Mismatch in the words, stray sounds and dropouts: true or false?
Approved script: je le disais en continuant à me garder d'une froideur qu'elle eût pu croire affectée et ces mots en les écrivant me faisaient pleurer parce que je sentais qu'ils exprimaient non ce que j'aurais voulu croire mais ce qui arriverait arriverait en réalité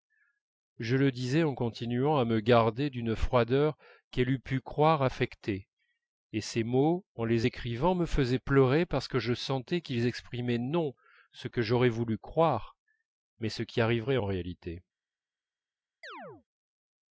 true